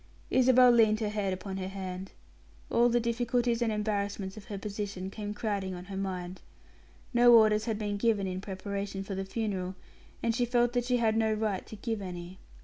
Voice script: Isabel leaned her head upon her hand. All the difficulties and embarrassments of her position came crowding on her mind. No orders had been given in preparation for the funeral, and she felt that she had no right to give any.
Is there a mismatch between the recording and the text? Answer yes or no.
no